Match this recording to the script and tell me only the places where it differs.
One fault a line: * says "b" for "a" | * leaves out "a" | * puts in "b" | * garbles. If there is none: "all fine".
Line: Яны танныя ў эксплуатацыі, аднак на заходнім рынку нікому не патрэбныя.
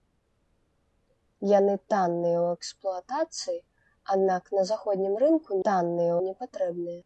* says "танныя" for "нікому"